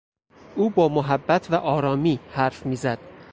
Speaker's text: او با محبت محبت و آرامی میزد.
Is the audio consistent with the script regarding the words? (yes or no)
no